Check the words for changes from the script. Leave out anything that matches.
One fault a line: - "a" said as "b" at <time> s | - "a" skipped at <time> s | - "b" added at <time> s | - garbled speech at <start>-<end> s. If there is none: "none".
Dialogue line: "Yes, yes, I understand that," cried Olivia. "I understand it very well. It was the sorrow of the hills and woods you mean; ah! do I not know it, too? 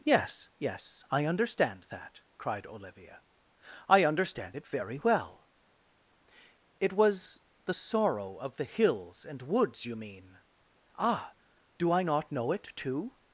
none